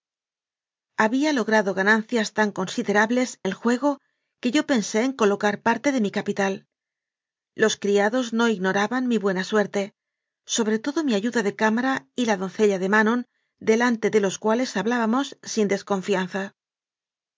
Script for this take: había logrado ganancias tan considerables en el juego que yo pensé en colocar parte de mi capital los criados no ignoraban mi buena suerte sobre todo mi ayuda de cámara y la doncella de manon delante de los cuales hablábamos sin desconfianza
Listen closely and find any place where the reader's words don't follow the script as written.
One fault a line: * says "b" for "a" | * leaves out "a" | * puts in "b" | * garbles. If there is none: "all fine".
* leaves out "en"